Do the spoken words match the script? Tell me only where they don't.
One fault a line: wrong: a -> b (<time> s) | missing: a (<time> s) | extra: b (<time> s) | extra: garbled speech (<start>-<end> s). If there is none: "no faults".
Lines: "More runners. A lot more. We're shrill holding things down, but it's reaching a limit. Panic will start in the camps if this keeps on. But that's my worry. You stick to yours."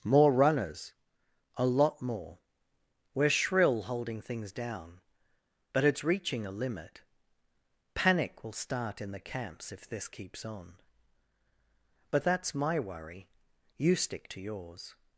no faults